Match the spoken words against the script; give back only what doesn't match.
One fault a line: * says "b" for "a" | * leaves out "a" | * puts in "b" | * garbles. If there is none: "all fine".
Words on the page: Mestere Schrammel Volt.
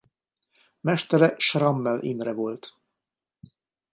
* puts in "Imre"